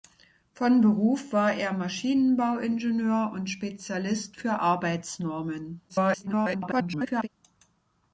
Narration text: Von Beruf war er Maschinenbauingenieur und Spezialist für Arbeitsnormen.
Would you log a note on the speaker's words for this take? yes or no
yes